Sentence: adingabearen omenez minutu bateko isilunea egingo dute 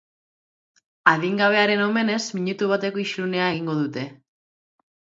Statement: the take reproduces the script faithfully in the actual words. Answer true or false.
true